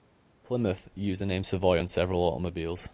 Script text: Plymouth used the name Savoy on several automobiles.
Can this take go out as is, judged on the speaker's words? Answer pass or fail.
pass